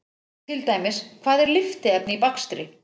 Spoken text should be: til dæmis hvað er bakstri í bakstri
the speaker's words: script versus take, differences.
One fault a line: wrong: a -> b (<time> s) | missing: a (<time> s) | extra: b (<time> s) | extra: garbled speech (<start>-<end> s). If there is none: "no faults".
wrong: bakstri -> lyftiefni (1.6 s)